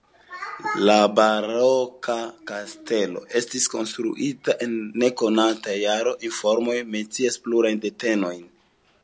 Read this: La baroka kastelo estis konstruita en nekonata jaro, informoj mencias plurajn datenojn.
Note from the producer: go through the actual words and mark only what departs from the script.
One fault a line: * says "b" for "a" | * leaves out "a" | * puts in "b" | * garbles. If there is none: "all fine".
all fine